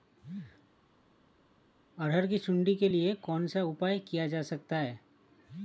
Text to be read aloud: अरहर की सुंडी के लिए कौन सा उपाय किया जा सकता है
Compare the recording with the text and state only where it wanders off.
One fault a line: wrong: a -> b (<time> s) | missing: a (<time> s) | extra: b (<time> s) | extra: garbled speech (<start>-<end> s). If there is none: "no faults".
no faults